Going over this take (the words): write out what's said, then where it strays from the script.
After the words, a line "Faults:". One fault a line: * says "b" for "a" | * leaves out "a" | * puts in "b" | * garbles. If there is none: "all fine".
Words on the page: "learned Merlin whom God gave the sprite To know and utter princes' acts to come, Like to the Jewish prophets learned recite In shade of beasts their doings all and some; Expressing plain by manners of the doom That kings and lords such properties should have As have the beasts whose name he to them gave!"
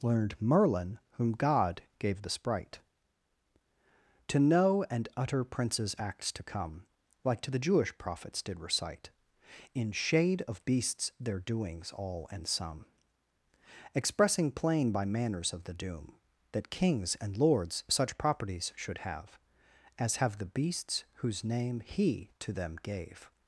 "learned Merlin whom God gave the sprite To know and utter princes' acts to come, Like to the Jewish prophets did recite In shade of beasts their doings all and some; Expressing plain by manners of the doom That kings and lords such properties should have As have the beasts whose name he to them gave!"
Faults:
* says "did" for "learned"